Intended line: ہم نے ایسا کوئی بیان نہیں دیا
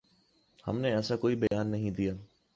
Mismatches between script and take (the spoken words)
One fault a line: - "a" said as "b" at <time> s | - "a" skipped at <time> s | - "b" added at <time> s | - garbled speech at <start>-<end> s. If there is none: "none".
none